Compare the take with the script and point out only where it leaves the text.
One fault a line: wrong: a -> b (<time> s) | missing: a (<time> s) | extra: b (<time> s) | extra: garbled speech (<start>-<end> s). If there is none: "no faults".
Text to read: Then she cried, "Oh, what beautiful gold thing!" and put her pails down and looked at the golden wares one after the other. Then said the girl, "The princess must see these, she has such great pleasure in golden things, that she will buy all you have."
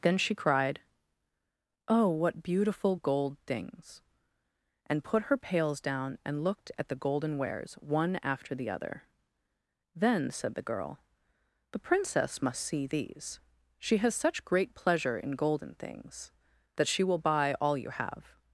wrong: thing -> things (3.5 s)